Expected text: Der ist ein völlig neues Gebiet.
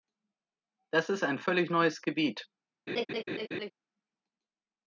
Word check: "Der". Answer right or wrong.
wrong